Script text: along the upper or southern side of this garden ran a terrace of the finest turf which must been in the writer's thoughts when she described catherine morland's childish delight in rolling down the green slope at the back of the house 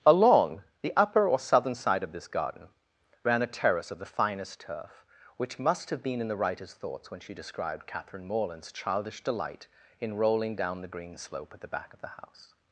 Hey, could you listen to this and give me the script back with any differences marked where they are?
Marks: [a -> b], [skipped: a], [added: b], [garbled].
along the upper or southern side of this garden ran a terrace of the finest turf which must [added: have] been in the writer's thoughts when she described catherine morland's childish delight in rolling down the green slope at the back of the house